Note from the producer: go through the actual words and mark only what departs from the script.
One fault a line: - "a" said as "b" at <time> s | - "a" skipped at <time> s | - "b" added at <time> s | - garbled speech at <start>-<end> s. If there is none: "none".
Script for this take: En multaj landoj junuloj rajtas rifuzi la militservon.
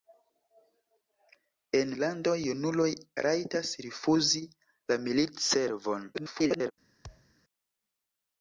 - "multaj" skipped at 1.9 s
- garbled speech at 6.1-6.7 s